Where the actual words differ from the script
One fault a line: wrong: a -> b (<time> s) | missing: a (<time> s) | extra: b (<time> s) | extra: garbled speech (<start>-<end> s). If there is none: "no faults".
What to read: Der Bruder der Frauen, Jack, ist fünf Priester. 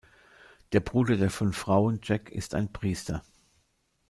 extra: fünf (1.3 s)
wrong: fünf -> ein (2.5 s)